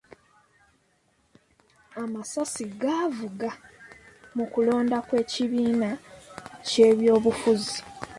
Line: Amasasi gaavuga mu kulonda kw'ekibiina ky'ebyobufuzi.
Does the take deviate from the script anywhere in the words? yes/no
no